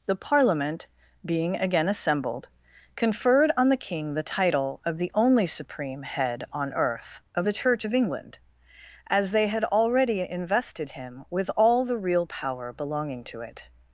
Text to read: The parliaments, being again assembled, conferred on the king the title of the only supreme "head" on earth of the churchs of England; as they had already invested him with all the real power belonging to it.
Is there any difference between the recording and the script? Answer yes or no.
yes